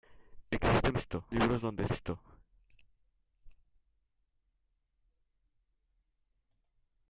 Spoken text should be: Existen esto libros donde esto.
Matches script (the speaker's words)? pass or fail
pass